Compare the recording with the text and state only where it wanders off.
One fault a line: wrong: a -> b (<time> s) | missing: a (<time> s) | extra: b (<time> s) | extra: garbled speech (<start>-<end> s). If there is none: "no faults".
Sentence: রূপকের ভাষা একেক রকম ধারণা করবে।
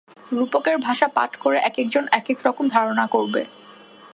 extra: পাঠ করে একেকজন (1.1 s)